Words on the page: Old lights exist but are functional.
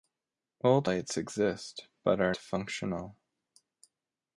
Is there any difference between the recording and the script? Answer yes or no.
no